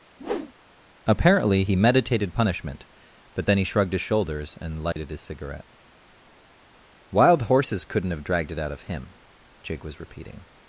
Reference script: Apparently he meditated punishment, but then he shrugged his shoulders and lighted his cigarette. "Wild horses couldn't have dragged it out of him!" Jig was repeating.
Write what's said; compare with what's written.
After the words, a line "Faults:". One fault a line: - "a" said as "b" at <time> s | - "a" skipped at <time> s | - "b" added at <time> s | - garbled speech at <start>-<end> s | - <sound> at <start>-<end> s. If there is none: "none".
Apparently he meditated punishment, but then he shrugged his shoulders and lighted his cigarette. "Wild horses couldn't have dragged it out of him!" Jig was repeating.
Faults:
- whoosh at 0.2-0.5 s
- dropout at 4.9-5.0 s